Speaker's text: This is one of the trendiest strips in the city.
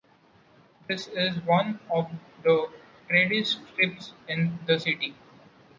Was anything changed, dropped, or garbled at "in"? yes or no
no